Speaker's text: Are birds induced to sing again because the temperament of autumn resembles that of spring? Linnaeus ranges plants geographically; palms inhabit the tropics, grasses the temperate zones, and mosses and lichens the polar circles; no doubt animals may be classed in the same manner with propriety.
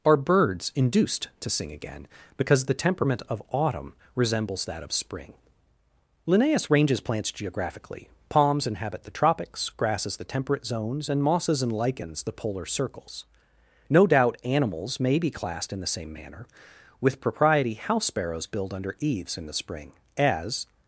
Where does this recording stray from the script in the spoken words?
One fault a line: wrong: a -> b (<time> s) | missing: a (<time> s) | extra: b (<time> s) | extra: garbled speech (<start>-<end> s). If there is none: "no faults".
extra: House sparrows build under eaves in the spring as (17.7 s)